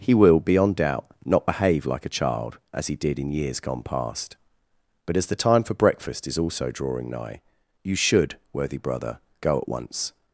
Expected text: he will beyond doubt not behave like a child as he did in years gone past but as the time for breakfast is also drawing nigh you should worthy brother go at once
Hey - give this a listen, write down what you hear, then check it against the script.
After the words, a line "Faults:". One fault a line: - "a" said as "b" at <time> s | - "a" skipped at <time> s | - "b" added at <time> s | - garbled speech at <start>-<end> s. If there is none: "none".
he will beyond doubt not behave like a child as he did in years gone past but as the time for breakfast is also drawing nigh you should worthy brother go at once
Faults:
none